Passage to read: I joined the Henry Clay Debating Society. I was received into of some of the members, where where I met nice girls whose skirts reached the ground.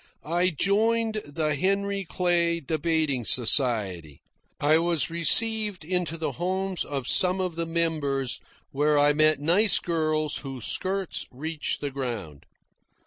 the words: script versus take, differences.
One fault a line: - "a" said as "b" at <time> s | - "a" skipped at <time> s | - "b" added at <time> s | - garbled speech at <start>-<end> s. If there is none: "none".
- "the homes" added at 6.2 s
- "where" skipped at 9.0 s